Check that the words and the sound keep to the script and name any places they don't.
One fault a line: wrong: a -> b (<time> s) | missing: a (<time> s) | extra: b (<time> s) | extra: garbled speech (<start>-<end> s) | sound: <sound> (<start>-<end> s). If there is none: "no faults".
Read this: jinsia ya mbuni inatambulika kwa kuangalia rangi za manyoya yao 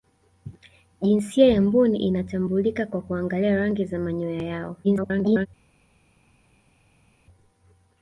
extra: garbled speech (4.8-5.5 s)